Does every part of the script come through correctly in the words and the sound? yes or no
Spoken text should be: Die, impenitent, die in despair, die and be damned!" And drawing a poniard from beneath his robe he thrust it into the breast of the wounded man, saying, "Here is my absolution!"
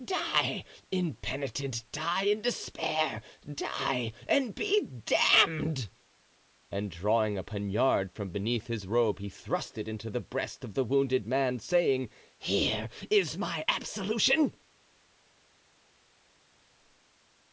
yes